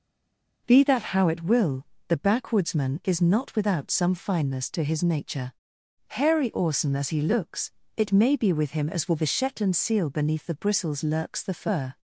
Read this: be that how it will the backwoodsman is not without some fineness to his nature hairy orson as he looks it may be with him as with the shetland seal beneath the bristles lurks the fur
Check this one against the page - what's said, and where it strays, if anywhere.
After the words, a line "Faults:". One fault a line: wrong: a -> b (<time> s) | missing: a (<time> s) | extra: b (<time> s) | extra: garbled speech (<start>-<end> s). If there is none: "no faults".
be that how it will the backwoodsman is not without some fineness to his nature hairy orson as he looks it may be with him as with the shetland seal beneath the bristles lurks the fur
Faults:
no faults